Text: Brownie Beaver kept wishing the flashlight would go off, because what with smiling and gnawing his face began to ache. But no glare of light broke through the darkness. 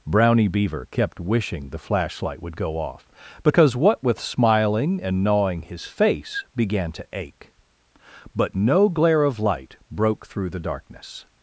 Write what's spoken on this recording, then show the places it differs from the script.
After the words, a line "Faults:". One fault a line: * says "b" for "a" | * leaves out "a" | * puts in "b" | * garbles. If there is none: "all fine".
Brownie Beaver kept wishing the flashlight would go off, because what with smiling and gnawing his face began to ache. But no glare of light broke through the darkness.
Faults:
all fine